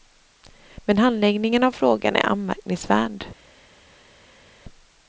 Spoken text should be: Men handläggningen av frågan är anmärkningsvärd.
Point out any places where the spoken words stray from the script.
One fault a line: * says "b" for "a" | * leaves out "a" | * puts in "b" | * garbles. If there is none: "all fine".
all fine